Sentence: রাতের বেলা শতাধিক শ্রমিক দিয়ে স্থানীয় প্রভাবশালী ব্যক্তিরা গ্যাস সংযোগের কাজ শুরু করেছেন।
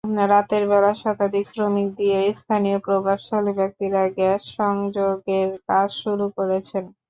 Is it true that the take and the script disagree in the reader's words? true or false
false